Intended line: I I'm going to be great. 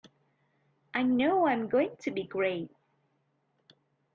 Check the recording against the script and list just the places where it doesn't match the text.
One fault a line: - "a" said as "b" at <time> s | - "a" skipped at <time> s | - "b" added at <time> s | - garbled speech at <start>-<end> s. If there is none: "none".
- "know" added at 1.0 s